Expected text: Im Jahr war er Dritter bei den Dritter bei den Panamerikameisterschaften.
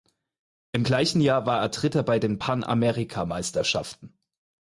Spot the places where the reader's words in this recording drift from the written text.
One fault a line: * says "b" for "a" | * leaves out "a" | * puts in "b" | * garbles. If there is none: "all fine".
* puts in "gleichen"
* leaves out "Dritter bei den"